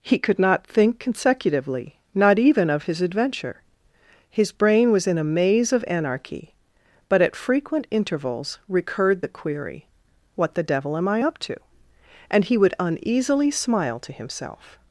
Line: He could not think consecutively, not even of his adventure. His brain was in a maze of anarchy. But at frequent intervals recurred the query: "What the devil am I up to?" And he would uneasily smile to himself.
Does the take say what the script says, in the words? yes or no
yes